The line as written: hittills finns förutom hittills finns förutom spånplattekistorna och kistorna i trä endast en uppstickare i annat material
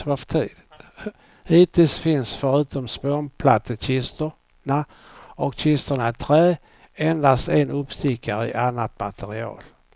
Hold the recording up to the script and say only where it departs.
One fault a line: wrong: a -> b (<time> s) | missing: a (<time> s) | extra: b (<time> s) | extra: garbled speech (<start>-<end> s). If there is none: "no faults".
missing: hittills finns förutom (2.9 s)